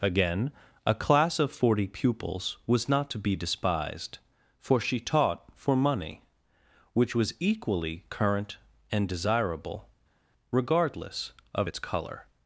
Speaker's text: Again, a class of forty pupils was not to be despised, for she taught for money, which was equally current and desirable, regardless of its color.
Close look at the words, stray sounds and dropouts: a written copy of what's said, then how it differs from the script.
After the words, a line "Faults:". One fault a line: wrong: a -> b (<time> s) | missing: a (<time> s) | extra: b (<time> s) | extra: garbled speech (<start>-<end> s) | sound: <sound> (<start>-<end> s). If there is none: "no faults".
Again, a class of forty pupils was not to be despised, for she taught for money, which was equally current and desirable, regardless of its color.
Faults:
no faults